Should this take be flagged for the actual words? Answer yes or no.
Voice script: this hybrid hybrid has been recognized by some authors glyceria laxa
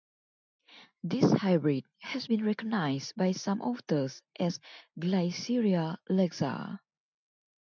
yes